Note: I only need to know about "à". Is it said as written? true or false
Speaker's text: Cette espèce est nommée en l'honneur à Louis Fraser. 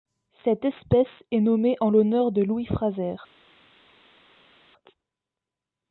false